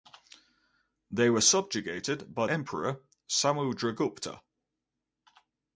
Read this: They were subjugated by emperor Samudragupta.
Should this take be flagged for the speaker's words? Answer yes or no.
no